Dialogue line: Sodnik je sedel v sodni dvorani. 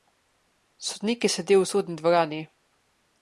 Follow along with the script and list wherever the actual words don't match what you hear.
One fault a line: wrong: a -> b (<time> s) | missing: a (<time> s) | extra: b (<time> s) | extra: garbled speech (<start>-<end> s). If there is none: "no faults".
no faults